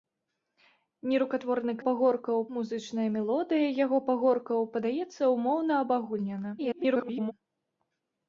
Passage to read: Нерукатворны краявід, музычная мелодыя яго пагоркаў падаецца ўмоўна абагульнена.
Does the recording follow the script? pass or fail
fail